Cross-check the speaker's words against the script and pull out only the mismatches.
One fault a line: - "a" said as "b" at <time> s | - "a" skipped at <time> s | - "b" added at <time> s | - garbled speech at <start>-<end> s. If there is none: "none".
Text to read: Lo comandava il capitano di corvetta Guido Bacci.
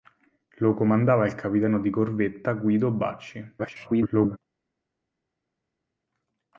- garbled speech at 3.6-4.4 s